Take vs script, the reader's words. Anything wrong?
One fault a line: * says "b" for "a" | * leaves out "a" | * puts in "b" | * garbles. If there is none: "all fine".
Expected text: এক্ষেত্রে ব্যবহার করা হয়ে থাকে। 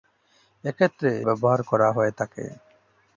all fine